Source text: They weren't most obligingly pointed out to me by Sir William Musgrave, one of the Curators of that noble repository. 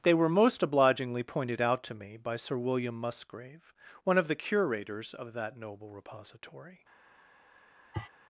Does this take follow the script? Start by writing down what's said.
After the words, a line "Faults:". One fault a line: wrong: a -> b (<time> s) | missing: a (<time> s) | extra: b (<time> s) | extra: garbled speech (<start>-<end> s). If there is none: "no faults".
They were most obligingly pointed out to me by Sir William Musgrave, one of the Curators of that noble repository.
Faults:
wrong: weren't -> were (0.1 s)